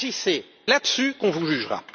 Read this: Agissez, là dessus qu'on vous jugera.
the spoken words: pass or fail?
pass